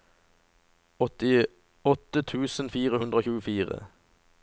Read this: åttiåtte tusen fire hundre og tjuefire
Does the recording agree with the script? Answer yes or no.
yes